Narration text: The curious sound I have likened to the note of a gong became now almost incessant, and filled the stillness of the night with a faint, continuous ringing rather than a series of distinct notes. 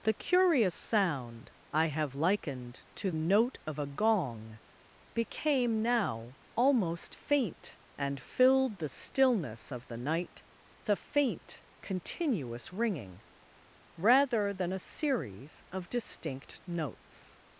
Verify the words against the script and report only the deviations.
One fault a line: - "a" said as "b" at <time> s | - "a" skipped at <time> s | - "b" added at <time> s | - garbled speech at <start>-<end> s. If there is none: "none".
- "the" skipped at 3.1 s
- "incessant" said as "faint" at 7.1 s
- "with" skipped at 10.4 s